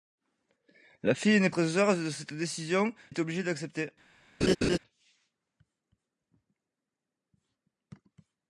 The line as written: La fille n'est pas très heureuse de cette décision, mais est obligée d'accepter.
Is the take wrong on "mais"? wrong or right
wrong